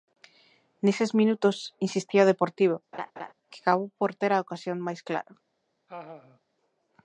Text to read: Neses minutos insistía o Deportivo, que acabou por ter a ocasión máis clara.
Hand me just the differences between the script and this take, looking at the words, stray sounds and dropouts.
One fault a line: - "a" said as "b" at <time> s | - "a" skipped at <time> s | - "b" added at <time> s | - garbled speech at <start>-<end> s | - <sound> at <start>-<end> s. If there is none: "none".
- laugh at 2.9-3.3 s
- laugh at 5.9-6.4 s